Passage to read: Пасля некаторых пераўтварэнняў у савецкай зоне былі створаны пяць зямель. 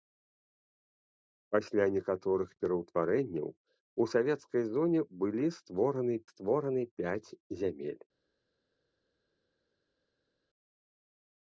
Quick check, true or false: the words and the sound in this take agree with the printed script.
false